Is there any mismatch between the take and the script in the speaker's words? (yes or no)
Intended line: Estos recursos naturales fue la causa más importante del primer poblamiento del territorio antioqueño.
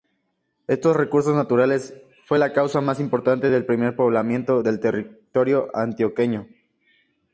no